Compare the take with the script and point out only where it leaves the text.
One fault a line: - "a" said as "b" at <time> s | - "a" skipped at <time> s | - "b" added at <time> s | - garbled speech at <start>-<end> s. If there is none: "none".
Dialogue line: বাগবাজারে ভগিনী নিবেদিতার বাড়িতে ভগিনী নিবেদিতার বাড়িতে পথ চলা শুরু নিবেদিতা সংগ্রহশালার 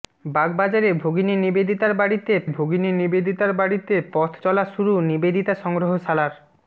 none